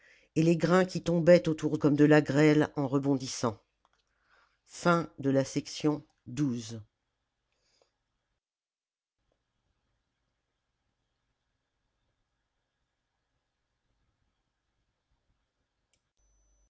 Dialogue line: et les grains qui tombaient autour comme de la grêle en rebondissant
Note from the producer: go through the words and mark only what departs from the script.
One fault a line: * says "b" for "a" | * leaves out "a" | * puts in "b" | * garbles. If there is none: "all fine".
all fine